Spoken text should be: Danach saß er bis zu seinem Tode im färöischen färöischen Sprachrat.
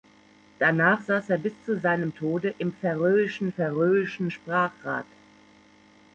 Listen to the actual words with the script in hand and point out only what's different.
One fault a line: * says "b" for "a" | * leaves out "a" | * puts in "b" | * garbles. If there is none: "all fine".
all fine